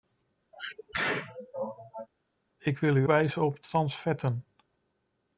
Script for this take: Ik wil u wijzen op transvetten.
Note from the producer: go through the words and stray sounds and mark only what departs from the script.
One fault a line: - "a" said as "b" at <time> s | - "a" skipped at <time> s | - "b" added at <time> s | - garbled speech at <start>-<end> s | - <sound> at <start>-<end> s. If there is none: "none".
- sneeze at 0.5-2.1 s